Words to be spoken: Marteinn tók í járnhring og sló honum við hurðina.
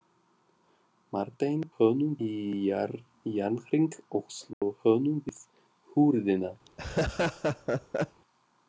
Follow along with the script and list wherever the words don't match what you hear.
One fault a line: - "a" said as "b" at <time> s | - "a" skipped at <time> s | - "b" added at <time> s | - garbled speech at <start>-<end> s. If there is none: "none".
- "tók" said as "honum" at 1.8 s